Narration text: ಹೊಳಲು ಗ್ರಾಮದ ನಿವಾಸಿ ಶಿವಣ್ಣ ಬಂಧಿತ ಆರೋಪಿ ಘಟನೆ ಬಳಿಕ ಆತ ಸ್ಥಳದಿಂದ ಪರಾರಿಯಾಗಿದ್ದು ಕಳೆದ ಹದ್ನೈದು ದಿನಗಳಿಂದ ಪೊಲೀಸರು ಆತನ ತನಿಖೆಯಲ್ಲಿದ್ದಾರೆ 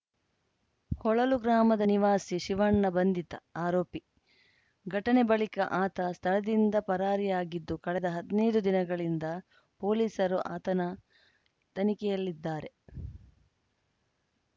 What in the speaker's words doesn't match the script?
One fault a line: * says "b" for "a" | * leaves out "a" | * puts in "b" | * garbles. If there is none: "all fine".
all fine